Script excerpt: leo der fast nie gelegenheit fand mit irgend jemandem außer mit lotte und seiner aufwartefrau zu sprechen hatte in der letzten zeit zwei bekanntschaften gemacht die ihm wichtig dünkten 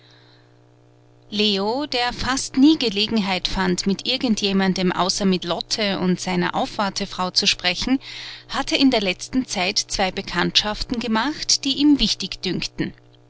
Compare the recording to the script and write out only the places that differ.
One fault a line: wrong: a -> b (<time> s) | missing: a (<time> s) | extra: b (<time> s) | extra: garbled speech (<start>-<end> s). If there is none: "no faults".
no faults